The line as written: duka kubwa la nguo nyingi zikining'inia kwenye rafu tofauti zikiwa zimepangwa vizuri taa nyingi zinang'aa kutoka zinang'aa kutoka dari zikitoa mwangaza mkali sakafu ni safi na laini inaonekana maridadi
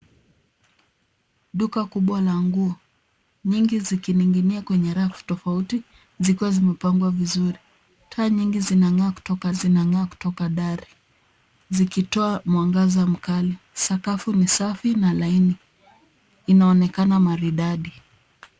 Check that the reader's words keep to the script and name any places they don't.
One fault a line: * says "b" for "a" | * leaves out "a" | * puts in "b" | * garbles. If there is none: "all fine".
all fine